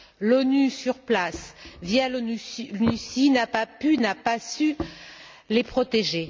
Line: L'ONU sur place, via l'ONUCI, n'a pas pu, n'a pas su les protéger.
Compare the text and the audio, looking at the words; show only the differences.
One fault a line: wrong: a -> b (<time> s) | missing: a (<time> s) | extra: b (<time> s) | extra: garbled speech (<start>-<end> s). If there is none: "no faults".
no faults